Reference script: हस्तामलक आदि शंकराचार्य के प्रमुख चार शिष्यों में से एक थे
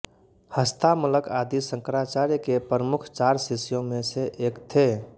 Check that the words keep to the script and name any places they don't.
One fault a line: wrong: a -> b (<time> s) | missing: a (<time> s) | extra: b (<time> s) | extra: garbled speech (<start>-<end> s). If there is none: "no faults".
no faults